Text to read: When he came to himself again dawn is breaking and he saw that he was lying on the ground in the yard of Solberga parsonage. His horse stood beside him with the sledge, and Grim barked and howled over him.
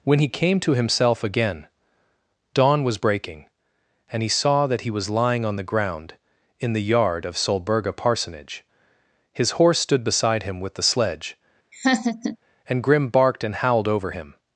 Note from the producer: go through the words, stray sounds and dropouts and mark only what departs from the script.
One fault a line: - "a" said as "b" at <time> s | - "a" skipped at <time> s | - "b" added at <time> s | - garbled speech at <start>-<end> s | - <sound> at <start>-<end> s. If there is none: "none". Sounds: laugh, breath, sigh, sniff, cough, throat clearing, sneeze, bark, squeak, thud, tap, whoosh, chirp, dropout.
- "is" said as "was" at 2.8 s
- laugh at 11.7-12.4 s